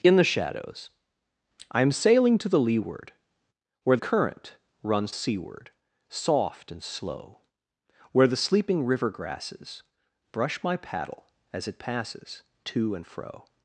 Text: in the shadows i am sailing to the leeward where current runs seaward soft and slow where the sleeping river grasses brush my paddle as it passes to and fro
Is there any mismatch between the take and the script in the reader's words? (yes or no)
no